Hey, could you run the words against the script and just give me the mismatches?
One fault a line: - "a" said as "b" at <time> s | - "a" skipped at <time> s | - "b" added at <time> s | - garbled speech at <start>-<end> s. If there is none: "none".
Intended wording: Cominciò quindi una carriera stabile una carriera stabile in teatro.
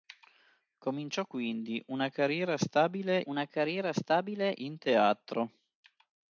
none